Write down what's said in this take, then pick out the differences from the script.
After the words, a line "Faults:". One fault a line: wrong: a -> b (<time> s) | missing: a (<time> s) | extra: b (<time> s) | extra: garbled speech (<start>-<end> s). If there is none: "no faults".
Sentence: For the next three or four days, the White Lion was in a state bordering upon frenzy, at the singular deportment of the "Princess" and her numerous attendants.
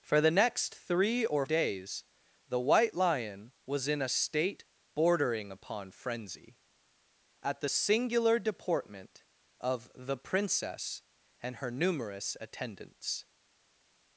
For the next three or days, the White Lion was in a state bordering upon frenzy, at the singular deportment of the "Princess" and her numerous attendants.
Faults:
missing: four (1.4 s)